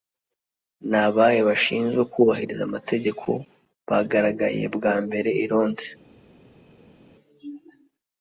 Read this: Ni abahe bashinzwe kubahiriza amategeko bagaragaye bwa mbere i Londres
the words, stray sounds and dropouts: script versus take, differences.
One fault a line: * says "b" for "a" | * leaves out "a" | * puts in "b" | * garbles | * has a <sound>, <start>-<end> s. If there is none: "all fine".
all fine